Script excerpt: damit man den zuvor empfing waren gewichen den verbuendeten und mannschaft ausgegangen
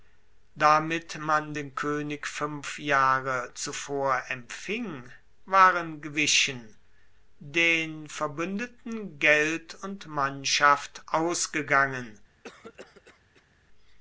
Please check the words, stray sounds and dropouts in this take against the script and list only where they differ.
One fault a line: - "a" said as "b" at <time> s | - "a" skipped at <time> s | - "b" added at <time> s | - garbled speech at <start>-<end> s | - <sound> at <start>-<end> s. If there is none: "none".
- "koenig fuenf jahre" added at 1.8 s
- "geld" added at 9.2 s
- cough at 12.4-13.6 s